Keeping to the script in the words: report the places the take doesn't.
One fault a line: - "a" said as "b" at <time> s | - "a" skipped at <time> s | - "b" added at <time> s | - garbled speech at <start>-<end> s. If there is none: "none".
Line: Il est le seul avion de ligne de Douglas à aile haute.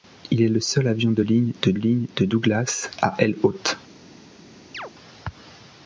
- "ligne de" added at 1.7 s